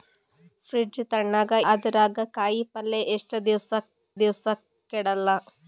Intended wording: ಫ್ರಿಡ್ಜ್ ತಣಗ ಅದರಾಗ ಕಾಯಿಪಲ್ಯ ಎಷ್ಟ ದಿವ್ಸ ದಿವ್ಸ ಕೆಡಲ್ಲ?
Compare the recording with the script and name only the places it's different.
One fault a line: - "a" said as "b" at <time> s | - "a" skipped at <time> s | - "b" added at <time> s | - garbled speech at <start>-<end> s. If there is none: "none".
none